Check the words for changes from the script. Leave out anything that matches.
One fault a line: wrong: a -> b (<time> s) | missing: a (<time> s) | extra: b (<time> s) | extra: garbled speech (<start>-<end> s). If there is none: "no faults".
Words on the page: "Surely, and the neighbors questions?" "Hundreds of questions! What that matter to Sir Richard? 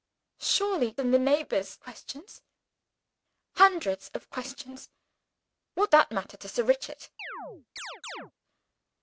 no faults